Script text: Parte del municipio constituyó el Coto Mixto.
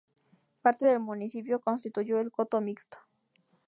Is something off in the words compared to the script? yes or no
no